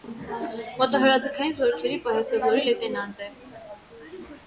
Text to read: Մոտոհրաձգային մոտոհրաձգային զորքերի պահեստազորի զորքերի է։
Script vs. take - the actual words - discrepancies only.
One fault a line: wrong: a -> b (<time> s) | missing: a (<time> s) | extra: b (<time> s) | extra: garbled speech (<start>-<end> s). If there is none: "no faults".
missing: մոտոհրաձգային (1.5 s)
wrong: զորքերի -> լեյտենանտ (2.7 s)